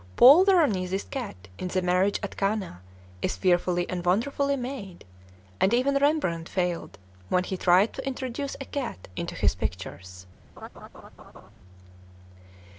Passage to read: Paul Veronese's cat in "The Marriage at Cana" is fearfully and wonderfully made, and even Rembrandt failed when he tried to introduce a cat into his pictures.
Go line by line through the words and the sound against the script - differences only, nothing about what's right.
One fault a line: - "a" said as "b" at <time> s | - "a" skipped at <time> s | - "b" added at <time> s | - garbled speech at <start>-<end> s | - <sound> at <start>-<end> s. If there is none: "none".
- laugh at 10.6-11.5 s